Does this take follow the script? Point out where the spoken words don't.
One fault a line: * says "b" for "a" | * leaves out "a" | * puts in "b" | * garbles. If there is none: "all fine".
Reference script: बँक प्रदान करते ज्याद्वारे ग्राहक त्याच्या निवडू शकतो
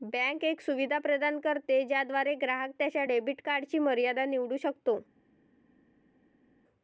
* puts in "एक सुविधा"
* puts in "डेबिट कार्डची मर्यादा"